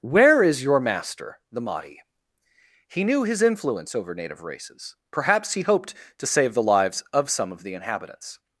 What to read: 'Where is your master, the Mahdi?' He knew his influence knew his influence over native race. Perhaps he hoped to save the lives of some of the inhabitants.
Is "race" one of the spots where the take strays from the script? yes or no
yes